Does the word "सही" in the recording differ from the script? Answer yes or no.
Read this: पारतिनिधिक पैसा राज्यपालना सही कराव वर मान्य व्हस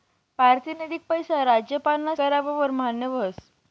yes